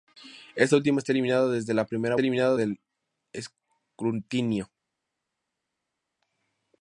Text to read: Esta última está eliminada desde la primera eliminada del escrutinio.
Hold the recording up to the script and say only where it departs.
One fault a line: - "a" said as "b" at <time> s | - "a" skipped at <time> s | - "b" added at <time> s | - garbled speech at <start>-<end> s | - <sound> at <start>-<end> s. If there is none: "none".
none